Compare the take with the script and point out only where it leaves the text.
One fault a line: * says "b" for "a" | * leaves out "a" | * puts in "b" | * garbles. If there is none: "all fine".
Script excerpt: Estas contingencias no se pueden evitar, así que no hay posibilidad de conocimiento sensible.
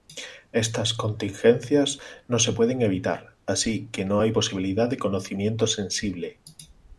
all fine